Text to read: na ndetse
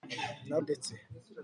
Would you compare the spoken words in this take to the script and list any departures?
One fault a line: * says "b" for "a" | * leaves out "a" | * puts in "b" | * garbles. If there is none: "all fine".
all fine